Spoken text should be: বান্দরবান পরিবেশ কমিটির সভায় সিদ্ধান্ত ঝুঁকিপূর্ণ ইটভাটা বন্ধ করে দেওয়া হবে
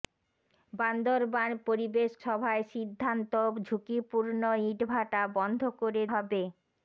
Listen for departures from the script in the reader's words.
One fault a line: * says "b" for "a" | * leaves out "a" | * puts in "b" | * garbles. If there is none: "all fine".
* leaves out "কমিটির"
* leaves out "দেওয়া"